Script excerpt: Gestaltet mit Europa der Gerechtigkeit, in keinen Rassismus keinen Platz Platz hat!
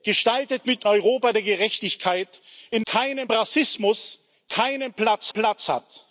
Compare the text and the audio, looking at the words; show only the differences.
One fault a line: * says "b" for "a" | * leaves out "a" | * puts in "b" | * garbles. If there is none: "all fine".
all fine